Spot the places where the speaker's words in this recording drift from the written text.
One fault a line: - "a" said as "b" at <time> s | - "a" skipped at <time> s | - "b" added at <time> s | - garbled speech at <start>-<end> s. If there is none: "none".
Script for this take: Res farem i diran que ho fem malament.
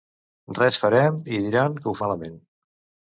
- "fem" skipped at 1.9 s